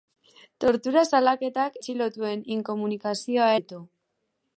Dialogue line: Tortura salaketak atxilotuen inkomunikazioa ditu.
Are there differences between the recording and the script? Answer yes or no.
no